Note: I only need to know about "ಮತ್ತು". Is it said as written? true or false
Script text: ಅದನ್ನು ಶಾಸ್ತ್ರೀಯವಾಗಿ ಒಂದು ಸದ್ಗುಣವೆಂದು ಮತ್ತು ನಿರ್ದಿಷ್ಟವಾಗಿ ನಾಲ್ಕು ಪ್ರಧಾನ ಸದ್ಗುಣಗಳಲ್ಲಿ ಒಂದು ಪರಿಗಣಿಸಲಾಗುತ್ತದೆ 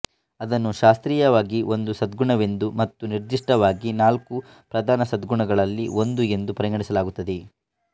true